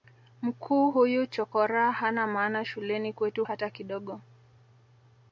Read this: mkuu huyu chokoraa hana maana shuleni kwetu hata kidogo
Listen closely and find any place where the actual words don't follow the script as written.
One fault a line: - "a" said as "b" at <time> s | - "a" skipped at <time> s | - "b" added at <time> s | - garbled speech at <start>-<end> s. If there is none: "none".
none